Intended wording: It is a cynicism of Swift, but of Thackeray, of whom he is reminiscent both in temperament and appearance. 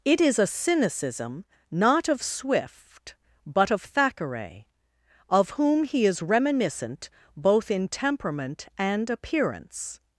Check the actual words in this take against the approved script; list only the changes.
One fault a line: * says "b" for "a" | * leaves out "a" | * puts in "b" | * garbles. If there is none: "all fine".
* puts in "not"